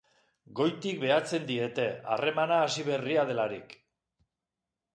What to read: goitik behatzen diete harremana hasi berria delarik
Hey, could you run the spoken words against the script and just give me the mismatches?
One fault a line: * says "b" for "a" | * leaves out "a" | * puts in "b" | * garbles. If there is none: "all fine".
all fine